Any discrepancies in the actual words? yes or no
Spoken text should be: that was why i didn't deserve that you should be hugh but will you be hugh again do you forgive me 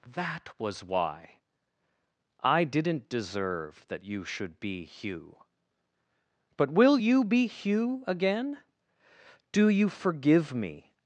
no